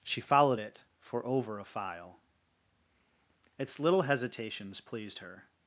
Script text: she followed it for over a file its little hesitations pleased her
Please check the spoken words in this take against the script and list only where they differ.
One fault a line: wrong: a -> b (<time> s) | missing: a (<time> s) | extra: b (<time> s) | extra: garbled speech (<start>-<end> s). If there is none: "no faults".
no faults